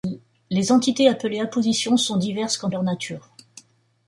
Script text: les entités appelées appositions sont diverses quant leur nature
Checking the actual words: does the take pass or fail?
pass